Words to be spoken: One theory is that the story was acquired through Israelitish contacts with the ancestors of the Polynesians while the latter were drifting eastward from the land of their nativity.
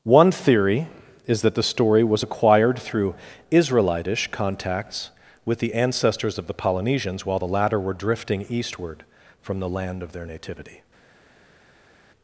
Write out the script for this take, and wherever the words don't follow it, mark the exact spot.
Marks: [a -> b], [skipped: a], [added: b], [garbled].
One theory is that the story was acquired through Israelitish contacts with the ancestors of the Polynesians while the latter were drifting eastward from the land of their nativity.